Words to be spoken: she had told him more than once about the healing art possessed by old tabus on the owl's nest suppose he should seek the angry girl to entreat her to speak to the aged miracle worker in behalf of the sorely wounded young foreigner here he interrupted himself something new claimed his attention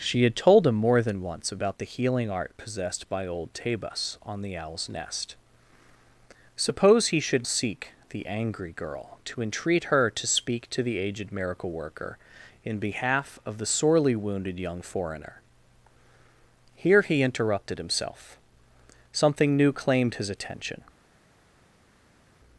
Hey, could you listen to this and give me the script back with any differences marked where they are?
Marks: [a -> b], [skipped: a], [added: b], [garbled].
she had told him more than once about the healing art possessed by old tabus on the owl's nest suppose he should seek the angry girl to entreat her to speak to the aged miracle worker in behalf of the sorely wounded young foreigner here he interrupted himself something new claimed his attention